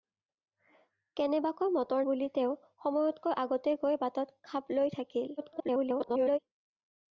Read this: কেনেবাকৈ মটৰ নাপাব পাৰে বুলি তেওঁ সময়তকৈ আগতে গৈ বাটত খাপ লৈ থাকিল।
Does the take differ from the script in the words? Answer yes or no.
yes